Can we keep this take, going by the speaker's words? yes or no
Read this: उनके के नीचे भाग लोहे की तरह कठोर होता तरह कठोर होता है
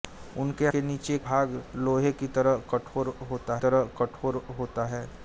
yes